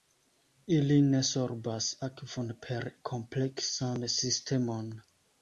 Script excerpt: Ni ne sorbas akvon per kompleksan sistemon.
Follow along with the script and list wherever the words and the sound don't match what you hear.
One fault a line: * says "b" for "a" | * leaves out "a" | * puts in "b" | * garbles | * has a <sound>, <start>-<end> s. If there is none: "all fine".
* says "Ili" for "Ni"